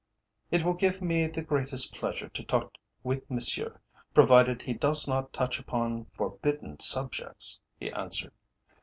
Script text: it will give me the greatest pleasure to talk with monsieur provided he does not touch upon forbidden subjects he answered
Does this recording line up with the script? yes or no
yes